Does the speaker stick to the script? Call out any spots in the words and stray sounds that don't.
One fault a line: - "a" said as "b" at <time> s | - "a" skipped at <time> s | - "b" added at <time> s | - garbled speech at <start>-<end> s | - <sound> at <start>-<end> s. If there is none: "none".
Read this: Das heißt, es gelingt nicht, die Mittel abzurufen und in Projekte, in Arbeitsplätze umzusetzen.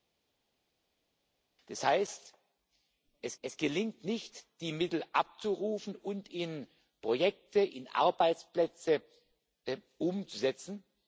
- "es" added at 3.4 s